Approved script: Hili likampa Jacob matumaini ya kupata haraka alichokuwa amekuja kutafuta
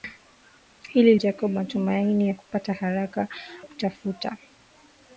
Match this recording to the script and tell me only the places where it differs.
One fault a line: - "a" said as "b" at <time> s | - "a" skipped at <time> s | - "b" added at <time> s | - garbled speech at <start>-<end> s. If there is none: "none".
- "likampa" skipped at 1.1 s
- "alichokuwa amekuja" skipped at 3.3 s